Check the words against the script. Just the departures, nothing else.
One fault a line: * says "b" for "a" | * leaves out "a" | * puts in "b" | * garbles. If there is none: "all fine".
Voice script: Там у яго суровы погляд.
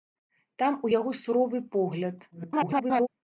* garbles